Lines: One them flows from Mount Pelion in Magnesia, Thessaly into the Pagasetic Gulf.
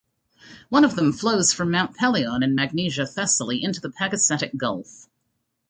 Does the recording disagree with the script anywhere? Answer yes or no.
yes